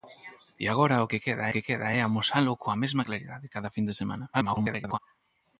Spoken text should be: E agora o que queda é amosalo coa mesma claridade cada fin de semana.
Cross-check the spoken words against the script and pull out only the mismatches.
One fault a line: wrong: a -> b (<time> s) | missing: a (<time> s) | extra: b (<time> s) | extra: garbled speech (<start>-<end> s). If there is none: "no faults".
extra: que queda (1.5 s)
extra: garbled speech (4.3-5.0 s)